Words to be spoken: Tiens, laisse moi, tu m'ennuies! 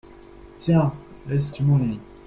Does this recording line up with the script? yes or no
no